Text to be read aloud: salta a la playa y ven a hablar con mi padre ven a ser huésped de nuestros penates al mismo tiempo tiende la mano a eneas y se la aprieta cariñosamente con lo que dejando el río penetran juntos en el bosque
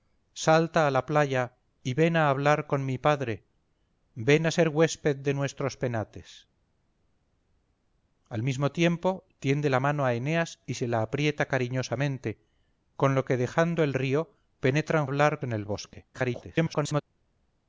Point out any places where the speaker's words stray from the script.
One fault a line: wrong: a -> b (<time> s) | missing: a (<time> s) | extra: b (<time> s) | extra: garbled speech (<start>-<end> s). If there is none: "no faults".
wrong: juntos -> hablar (15.0 s)
extra: garbled speech (16.1-17.0 s)